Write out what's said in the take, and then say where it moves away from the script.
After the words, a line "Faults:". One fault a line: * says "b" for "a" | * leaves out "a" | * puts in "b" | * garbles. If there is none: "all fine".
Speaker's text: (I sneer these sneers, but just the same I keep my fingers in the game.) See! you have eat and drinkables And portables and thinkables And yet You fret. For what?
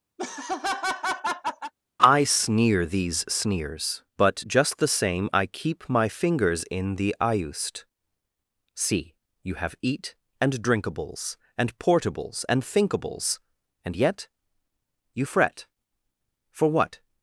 (I sneer these sneers, but just the same I keep my fingers in the iust.) See! you have eat and drinkables And portables and thinkables And yet You fret. For what?
Faults:
* says "iust" for "game"